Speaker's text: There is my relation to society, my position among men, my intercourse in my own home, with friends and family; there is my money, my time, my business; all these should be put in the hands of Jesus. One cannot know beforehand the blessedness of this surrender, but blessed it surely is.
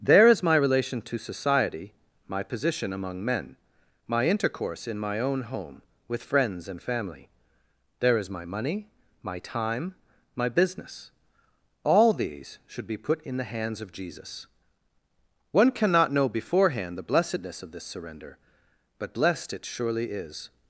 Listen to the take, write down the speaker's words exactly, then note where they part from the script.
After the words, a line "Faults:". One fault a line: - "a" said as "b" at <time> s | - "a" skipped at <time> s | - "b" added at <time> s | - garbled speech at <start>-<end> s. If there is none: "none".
There is my relation to society, my position among men, my intercourse in my own home, with friends and family; there is my money, my time, my business; all these should be put in the hands of Jesus. One cannot know beforehand the blessedness of this surrender, but blessed it surely is.
Faults:
none